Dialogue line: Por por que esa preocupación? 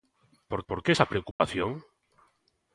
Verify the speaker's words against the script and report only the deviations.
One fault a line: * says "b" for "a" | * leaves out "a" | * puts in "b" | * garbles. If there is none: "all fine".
all fine